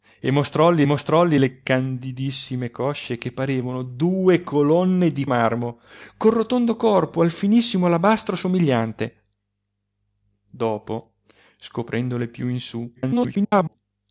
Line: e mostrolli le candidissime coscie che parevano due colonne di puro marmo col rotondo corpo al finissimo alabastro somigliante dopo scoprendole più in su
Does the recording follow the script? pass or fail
fail